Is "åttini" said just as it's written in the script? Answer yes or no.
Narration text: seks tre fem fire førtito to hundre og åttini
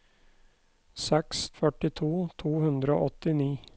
yes